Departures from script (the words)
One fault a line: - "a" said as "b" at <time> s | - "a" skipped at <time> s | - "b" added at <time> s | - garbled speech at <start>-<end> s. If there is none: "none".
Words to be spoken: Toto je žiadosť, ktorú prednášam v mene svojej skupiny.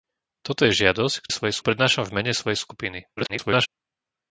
- "ktorú" said as "svojej" at 1.3 s
- garbled speech at 3.2-3.7 s